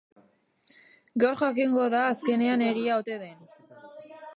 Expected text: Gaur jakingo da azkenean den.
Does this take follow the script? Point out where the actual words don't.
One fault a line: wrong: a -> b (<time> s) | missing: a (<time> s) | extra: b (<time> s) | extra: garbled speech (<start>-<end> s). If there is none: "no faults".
extra: egia ote (2.7 s)